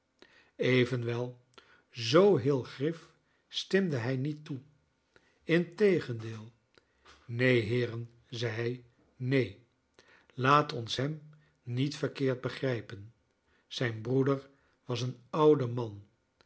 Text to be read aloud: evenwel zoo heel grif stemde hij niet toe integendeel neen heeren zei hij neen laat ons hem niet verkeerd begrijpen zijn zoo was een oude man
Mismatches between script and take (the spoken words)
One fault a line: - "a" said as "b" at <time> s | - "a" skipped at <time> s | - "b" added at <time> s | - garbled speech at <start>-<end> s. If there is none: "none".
- "zoo" said as "broeder" at 14.0 s